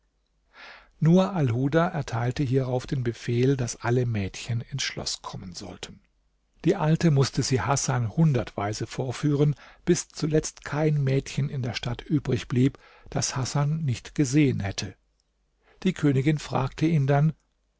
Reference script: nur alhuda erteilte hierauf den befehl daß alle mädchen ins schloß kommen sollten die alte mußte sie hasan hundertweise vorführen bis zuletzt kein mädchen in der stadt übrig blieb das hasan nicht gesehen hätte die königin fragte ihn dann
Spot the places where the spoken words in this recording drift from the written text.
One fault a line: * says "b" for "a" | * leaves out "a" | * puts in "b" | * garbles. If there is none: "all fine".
all fine